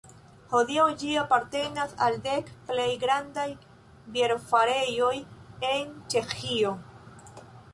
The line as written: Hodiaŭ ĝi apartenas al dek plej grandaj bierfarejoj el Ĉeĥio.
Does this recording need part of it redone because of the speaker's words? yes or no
yes